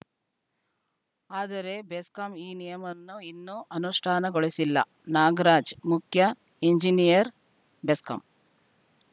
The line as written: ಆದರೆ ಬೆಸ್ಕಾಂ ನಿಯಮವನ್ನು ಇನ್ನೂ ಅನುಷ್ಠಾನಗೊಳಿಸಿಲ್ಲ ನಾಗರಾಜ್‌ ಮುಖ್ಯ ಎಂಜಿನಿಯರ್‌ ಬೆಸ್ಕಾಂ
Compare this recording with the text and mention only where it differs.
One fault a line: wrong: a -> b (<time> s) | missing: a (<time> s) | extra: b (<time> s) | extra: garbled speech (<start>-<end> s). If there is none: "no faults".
extra: ಈ (2.4 s)